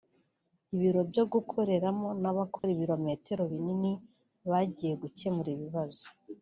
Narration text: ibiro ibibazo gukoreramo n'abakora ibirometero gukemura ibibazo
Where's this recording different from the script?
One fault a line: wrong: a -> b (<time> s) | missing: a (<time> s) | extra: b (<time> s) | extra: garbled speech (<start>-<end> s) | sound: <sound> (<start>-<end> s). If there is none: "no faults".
wrong: ibibazo -> byo (1.1 s)
sound: dropout (2.6-2.6 s)
extra: binini bagiye (3.5 s)